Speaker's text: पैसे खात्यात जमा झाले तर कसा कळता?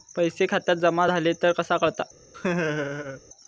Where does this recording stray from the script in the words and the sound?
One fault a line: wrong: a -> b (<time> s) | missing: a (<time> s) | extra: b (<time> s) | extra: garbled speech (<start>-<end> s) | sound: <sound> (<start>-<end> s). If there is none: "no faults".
sound: laugh (2.3-3.2 s)